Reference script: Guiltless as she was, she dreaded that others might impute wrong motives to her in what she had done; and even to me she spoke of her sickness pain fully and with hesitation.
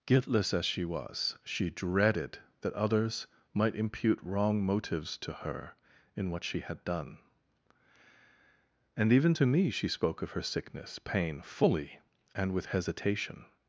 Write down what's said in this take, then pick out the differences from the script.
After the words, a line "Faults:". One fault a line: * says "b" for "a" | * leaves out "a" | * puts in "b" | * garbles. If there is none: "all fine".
Guiltless as she was, she dreaded that others might impute wrong motives to her in what she had done; and even to me she spoke of her sickness pain fully and with hesitation.
Faults:
all fine